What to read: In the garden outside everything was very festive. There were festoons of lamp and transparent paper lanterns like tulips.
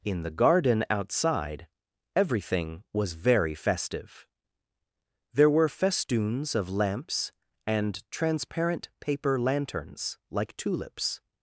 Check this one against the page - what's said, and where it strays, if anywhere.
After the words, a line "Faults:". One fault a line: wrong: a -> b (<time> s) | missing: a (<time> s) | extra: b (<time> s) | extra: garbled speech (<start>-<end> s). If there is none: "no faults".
In the garden outside everything was very festive. There were festoons of lamps and transparent paper lanterns like tulips.
Faults:
wrong: lamp -> lamps (6.7 s)